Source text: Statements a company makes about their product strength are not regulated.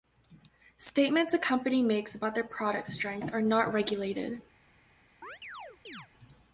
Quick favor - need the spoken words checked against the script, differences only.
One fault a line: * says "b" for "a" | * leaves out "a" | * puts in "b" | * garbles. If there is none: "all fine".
all fine